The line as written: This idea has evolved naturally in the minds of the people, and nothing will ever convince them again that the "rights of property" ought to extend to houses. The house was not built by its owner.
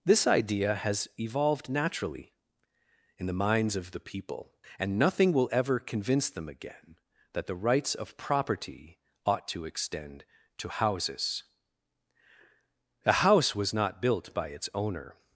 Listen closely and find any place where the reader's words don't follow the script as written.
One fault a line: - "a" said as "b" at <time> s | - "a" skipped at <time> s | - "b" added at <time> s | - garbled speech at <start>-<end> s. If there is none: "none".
- "The" said as "A" at 13.1 s